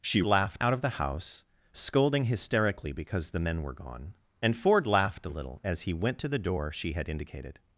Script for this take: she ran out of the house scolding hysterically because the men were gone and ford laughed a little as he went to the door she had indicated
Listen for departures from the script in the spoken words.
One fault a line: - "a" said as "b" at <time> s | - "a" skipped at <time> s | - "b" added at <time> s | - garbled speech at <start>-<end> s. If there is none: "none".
- "ran" said as "laughed" at 0.2 s